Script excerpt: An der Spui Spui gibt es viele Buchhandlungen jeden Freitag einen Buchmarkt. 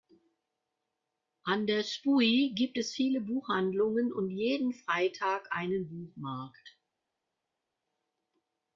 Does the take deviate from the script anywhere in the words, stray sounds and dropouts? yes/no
yes